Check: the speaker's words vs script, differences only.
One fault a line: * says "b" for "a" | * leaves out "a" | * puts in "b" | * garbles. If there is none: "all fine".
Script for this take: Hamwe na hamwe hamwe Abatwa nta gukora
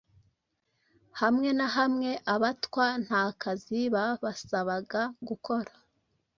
* leaves out "hamwe"
* puts in "kazi babasabaga"